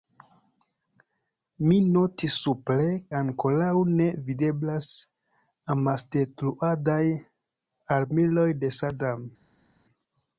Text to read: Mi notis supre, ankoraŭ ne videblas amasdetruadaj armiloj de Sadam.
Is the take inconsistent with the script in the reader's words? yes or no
no